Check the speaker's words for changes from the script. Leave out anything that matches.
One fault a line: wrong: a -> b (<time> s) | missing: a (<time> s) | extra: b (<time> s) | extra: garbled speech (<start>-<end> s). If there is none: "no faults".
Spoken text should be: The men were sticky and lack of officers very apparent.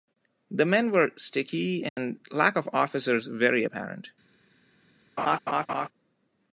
no faults